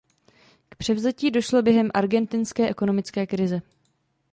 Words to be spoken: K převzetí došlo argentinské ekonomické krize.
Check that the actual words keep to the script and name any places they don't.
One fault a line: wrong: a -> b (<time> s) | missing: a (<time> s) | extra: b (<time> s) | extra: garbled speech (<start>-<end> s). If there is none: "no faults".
extra: během (1.6 s)